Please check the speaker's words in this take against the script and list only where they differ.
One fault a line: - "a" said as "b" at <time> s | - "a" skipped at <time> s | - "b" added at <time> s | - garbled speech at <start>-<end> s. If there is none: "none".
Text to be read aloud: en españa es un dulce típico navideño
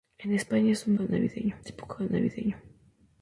- "dulce" said as "navideño" at 1.0 s